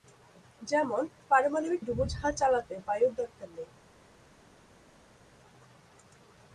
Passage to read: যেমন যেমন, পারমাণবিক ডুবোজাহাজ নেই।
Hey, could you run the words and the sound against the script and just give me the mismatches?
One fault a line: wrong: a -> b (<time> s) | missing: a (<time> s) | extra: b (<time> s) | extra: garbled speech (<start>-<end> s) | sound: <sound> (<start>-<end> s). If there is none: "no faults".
missing: যেমন (1.0 s)
extra: চালাতে বায়ুর দরকার (2.3 s)